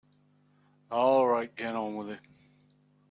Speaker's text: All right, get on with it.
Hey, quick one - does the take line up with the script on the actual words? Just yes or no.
yes